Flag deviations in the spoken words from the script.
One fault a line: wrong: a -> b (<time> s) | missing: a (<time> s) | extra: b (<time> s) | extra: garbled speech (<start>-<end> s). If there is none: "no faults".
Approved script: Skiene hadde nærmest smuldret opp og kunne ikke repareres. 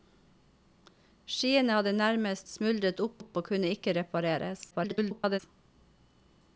extra: opp (3.2 s)
extra: garbled speech (4.7-5.4 s)